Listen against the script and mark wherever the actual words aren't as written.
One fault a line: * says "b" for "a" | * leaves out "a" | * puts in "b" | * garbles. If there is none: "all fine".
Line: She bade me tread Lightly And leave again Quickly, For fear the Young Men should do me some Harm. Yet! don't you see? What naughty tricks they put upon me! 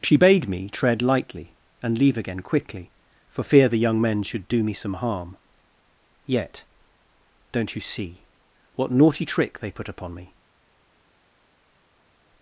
* says "trick" for "tricks"